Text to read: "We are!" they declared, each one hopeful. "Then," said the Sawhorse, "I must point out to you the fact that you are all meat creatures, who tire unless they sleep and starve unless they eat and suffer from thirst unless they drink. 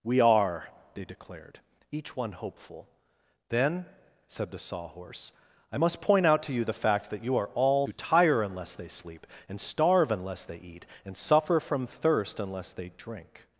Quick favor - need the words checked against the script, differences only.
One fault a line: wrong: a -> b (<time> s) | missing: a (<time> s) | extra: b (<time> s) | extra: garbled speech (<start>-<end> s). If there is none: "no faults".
missing: meat creatures (7.9 s)